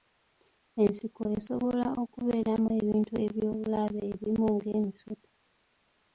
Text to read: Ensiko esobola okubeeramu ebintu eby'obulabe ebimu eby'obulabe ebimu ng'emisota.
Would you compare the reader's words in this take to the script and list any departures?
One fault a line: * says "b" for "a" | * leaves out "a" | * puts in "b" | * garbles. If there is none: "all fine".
* leaves out "eby'obulabe ebimu"